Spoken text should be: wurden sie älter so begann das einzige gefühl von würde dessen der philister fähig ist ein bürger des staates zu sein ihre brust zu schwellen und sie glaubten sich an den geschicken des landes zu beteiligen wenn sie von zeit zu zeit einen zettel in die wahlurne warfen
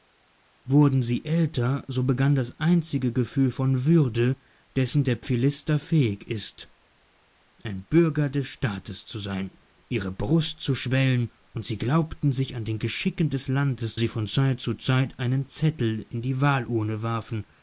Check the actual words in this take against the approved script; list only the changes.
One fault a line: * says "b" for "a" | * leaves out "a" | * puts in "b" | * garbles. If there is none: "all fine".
* leaves out "zu beteiligen wenn"